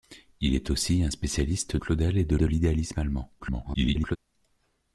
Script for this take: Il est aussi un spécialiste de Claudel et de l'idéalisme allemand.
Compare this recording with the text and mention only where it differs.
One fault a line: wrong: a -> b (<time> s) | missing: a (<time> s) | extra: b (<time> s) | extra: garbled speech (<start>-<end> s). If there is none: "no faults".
missing: de (1.8 s)
extra: de (2.4 s)
extra: garbled speech (3.4-4.2 s)